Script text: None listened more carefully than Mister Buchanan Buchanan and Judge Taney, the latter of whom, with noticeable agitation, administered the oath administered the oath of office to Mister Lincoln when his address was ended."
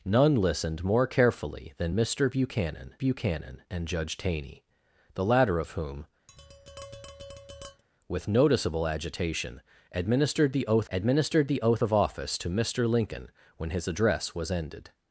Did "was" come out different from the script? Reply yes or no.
no